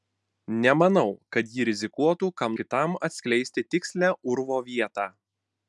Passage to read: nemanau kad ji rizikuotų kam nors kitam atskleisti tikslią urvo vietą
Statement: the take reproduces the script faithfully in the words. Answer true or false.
false